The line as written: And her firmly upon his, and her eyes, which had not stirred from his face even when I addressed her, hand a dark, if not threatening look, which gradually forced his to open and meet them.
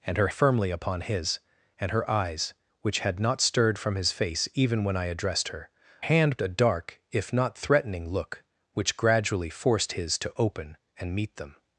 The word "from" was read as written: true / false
true